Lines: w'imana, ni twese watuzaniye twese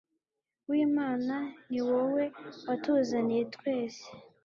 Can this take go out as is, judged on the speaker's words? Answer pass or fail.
fail